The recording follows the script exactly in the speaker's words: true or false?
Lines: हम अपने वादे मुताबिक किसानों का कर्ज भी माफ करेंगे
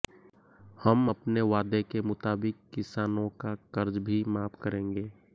false